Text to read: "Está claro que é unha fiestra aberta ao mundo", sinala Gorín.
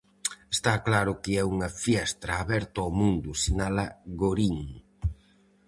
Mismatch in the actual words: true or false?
false